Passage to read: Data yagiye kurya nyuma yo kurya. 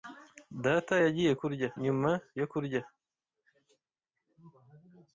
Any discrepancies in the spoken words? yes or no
no